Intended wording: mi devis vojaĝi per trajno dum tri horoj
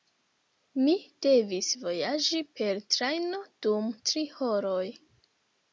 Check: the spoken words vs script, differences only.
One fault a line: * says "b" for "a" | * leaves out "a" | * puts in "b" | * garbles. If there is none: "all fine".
all fine